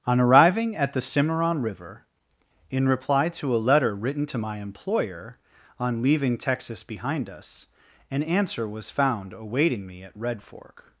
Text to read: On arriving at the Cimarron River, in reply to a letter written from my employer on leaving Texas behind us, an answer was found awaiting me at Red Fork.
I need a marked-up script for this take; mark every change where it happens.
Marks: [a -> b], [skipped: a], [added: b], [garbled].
On arriving at the Cimarron River, in reply to a letter written [from -> to] my employer on leaving Texas behind us, an answer was found awaiting me at Red Fork.